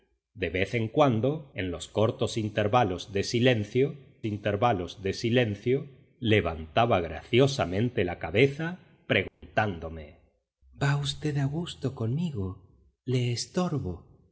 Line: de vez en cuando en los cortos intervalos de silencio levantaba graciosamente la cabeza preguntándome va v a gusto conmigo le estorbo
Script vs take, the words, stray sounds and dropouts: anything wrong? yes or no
yes